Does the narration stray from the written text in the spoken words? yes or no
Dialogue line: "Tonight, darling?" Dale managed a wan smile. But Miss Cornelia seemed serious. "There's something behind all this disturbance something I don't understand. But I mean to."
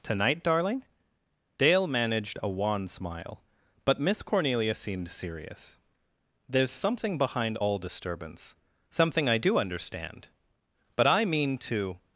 yes